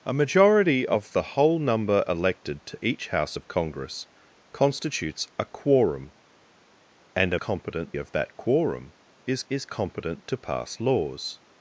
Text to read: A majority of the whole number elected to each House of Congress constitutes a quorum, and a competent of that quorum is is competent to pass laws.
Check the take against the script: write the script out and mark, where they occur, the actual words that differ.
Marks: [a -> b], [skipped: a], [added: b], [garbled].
A majority of the whole number elected to each House of Congress constitutes a quorum, and a competent of that quorum is is competent to pass laws.